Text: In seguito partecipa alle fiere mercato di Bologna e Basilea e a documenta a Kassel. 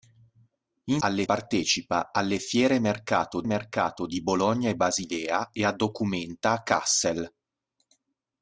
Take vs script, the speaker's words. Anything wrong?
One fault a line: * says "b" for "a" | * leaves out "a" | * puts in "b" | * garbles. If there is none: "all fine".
* says "alle" for "seguito"
* puts in "mercato"